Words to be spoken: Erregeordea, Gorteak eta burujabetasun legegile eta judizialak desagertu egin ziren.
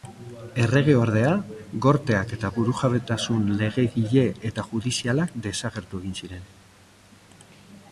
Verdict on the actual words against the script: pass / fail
pass